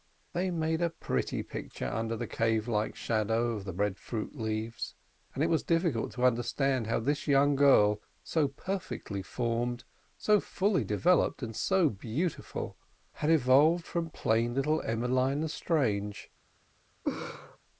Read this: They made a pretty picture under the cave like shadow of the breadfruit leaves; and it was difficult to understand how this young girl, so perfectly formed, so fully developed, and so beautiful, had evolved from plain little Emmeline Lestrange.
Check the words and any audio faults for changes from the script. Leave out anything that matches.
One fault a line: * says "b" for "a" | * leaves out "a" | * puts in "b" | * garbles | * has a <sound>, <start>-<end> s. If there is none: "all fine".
* has a laugh, 17.0-17.6 s